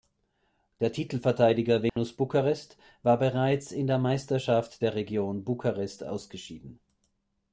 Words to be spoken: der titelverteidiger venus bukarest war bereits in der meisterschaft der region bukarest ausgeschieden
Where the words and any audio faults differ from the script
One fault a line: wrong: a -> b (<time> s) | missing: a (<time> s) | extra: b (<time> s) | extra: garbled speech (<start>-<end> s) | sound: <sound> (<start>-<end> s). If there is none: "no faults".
sound: dropout (1.9-2.0 s)